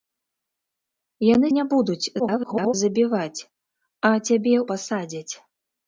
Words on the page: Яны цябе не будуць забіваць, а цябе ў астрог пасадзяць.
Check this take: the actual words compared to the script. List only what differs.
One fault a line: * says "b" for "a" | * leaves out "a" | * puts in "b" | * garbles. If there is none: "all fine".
* leaves out "цябе"
* garbles
* leaves out "ў астрог"